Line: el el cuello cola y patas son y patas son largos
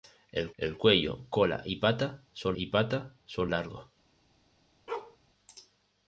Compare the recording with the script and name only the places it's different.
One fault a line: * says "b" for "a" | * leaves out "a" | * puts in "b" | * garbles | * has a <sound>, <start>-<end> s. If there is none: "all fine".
* has a bark, 4.9-5.2 s